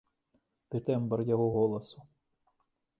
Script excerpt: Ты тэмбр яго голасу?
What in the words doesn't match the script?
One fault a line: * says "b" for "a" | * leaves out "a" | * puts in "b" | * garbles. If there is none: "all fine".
all fine